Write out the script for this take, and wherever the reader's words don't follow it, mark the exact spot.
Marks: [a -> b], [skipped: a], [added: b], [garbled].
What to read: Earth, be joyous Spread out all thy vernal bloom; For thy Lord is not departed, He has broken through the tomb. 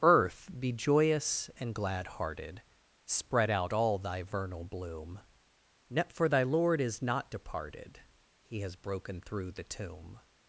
Earth, be joyous [added: and glad hearted] Spread out all thy vernal bloom; For thy Lord is not departed, He has broken through the tomb.